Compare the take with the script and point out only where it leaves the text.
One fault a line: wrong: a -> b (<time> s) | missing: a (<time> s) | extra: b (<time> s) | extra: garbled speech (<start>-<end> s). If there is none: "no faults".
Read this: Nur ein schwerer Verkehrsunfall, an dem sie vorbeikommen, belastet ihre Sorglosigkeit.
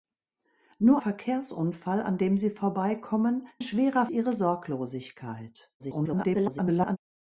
missing: ein schwerer (1.0 s)
wrong: belastet -> schwerer (3.6 s)
extra: garbled speech (5.8-7.0 s)